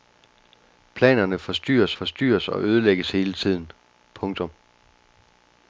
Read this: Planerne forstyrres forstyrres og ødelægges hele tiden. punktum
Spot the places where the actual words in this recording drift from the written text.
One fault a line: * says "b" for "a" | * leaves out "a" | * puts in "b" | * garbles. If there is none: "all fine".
all fine